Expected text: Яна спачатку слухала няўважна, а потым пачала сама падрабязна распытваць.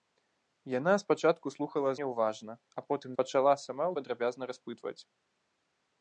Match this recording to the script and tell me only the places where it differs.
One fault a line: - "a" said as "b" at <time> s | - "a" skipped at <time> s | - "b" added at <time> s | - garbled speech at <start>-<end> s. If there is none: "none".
none